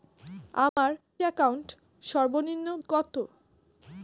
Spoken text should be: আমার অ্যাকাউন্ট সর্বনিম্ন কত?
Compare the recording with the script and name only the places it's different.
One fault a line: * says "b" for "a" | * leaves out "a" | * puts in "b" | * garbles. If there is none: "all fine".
all fine